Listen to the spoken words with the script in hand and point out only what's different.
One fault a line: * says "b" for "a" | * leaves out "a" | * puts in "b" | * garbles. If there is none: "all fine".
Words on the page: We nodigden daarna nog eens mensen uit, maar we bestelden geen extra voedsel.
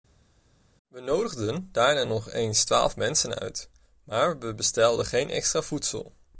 * puts in "twaalf"